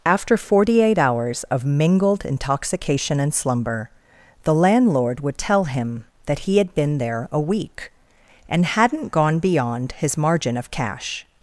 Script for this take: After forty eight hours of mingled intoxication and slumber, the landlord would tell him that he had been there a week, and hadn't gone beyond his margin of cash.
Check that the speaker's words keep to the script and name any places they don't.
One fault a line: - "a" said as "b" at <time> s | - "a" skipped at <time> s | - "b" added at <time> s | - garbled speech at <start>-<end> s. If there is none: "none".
none